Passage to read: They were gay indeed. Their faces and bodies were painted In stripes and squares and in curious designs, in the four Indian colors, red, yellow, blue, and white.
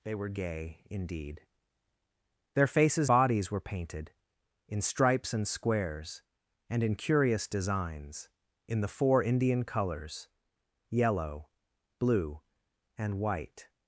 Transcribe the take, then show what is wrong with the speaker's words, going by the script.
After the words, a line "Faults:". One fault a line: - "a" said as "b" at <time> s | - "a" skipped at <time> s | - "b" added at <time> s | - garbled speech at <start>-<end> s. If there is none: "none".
They were gay indeed. Their faces bodies were painted In stripes and squares and in curious designs, in the four Indian colors, yellow, blue, and white.
Faults:
- "and" skipped at 3.1 s
- "red" skipped at 10.3 s